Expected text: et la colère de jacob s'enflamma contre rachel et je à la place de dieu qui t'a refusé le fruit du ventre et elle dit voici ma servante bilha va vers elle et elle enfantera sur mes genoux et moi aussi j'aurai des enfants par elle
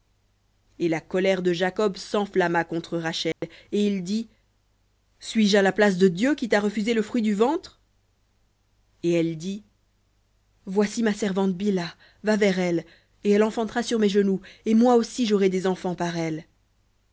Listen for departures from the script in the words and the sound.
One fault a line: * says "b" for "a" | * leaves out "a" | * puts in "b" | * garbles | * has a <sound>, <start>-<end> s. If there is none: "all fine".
* has a dropout, 3.3-3.4 s
* puts in "il dit suis"